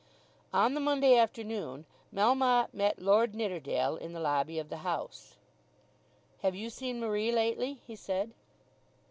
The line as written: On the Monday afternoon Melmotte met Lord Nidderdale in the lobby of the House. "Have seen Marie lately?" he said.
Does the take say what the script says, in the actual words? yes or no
no